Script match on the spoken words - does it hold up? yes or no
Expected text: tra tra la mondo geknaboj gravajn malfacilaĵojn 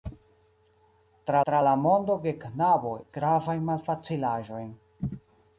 yes